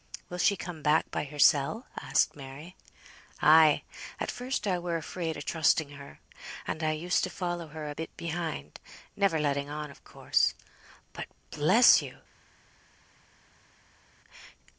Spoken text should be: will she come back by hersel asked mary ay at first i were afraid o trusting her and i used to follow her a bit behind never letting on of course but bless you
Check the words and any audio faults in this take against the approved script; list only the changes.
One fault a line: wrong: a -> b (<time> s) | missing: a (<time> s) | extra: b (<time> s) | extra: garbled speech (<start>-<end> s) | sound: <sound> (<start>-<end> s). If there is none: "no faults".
no faults